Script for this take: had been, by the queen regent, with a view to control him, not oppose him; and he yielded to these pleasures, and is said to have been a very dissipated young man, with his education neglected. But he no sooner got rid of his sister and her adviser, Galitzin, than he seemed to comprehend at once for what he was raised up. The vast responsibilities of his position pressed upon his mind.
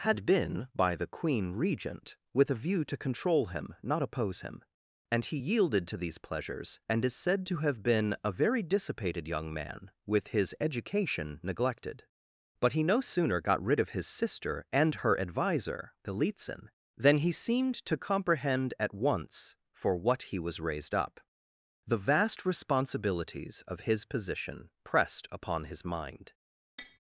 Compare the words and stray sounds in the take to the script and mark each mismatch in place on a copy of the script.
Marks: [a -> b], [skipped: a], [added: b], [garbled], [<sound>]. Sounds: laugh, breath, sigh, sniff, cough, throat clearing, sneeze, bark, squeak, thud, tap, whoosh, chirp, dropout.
had been, by the queen regent, with a view to control him, not oppose him; and he yielded to these pleasures, and is said to have been a very dissipated young man, with his education neglected. But he no sooner got rid of his sister and her adviser, Galitzin, than he seemed to comprehend at once for what he was raised up. The vast responsibilities of his position pressed upon his mind. [tap]